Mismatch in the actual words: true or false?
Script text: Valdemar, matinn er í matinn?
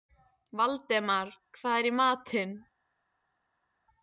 true